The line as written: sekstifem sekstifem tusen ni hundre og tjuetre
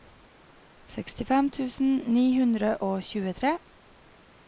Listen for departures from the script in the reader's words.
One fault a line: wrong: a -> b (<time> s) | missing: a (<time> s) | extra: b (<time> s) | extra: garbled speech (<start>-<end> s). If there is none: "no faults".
missing: sekstifem (1.5 s)